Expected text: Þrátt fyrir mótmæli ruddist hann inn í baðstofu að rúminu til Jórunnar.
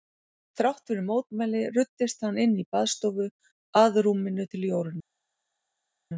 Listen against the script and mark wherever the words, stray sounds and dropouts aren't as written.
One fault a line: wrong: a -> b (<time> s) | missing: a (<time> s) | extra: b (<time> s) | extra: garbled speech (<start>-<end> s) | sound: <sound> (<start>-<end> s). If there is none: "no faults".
no faults